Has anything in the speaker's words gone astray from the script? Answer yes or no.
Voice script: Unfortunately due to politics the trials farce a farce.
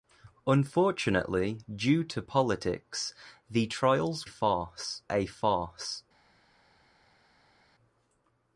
no